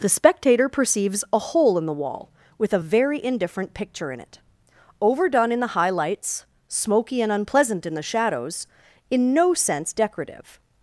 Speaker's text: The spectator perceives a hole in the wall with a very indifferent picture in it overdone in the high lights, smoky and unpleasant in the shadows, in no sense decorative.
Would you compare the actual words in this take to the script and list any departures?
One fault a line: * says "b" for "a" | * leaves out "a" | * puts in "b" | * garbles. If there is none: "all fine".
all fine